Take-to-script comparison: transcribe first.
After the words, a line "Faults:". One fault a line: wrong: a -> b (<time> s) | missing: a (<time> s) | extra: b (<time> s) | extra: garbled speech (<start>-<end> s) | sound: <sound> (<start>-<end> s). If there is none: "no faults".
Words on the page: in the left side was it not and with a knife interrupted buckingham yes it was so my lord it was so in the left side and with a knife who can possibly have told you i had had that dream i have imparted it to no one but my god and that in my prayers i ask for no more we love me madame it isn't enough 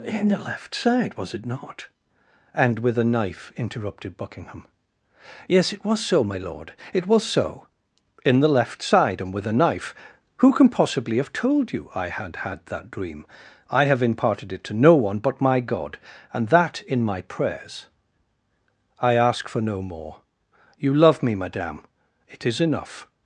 in the left side was it not and with a knife interrupted buckingham yes it was so my lord it was so in the left side and with a knife who can possibly have told you i had had that dream i have imparted it to no one but my god and that in my prayers i ask for no more you love me madame it is enough
Faults:
wrong: we -> you (20.8 s)
wrong: isn't -> is (22.4 s)